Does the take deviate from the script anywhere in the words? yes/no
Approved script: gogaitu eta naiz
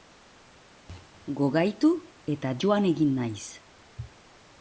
yes